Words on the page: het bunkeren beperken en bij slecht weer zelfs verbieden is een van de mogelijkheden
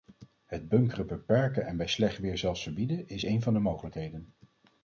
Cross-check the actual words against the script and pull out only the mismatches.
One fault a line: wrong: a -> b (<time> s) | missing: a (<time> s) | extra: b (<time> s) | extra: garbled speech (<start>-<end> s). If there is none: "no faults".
no faults